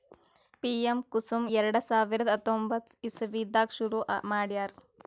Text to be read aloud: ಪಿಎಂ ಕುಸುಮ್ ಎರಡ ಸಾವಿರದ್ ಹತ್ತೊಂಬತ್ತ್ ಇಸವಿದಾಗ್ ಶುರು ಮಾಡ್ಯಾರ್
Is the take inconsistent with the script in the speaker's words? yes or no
no